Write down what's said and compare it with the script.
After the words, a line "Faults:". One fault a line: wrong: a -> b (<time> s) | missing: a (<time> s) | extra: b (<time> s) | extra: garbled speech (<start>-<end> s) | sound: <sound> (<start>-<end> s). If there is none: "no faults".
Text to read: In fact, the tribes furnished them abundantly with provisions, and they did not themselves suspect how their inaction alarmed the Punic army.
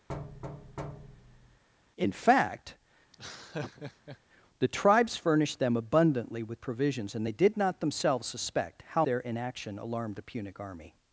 In fact, the tribes furnished them abundantly with provisions, and they did not themselves suspect how their inaction alarmed the Punic army.
Faults:
sound: thud (0.1-1.6 s)
sound: laugh (3.1-4.2 s)